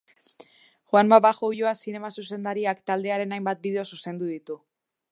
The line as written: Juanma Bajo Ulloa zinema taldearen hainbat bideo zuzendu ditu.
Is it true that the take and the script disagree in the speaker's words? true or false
true